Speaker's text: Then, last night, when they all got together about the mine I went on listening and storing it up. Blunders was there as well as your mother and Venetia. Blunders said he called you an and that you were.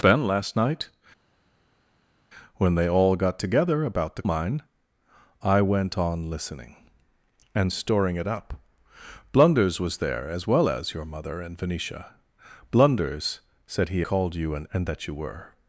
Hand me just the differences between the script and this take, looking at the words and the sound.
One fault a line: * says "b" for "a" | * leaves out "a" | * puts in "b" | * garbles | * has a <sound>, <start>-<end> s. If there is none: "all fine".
all fine